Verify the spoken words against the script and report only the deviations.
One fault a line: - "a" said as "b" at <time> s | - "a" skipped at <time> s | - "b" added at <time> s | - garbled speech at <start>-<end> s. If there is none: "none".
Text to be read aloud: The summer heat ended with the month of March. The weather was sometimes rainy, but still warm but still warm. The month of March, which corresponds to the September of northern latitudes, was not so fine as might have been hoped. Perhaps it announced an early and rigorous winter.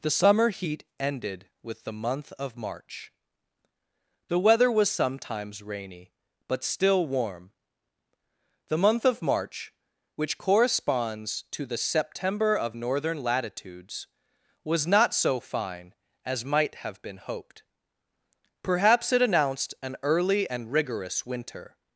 - "but still warm" skipped at 7.5 s